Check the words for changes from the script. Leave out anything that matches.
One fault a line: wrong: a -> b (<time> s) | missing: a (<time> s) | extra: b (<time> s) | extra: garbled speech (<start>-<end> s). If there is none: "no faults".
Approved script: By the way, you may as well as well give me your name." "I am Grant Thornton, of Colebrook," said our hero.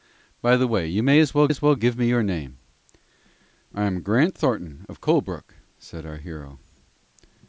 no faults